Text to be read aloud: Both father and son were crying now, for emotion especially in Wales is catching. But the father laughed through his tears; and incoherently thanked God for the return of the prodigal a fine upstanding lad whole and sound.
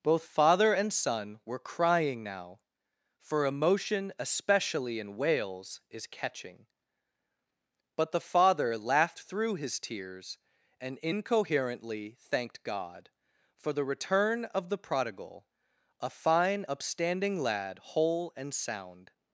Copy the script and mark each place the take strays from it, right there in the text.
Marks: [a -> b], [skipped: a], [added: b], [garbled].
Both father and son were crying now, for emotion especially in Wales is catching. But the father laughed through his tears; and incoherently thanked God for the return of the prodigal a fine upstanding lad whole and sound.